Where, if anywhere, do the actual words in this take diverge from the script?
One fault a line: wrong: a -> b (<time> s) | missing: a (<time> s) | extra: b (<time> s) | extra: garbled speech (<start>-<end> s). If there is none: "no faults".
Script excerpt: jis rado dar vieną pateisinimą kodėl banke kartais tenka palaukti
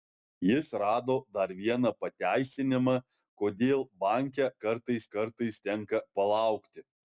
extra: kartais (5.2 s)